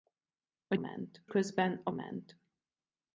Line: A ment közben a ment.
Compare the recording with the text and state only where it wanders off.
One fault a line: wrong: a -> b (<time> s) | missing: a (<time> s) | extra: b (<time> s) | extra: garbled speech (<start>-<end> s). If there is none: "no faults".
no faults